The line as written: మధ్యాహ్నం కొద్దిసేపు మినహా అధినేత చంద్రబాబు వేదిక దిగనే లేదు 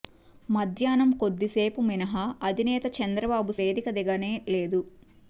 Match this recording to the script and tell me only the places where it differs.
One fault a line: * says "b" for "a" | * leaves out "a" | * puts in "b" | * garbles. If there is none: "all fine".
all fine